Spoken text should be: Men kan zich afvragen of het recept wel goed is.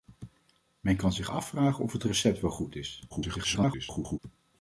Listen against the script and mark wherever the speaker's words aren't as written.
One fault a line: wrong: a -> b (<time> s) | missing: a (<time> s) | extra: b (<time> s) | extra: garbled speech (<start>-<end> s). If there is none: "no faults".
extra: garbled speech (3.1-4.2 s)